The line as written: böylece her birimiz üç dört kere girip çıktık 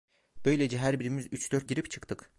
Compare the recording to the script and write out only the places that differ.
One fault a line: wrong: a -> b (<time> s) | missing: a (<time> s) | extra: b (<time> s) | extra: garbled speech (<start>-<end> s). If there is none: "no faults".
missing: kere (1.7 s)